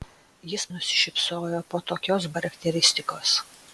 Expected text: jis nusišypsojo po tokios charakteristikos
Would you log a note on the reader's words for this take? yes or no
no